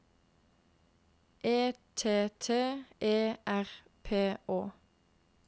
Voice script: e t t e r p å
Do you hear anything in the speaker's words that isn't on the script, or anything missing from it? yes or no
no